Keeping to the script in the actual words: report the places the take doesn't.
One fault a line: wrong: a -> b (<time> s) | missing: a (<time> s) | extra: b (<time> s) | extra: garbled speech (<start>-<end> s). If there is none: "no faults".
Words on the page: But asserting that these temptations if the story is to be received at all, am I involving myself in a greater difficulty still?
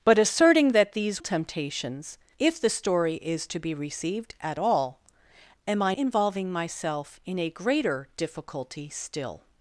no faults